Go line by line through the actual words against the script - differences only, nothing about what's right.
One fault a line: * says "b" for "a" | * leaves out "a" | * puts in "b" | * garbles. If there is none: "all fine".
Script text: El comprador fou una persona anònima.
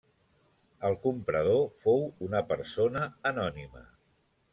all fine